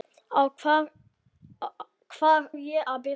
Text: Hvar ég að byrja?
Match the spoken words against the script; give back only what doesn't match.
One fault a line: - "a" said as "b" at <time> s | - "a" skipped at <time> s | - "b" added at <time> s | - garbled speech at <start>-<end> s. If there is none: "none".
none